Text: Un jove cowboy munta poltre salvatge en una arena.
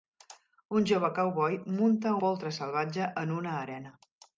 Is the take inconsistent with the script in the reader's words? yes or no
no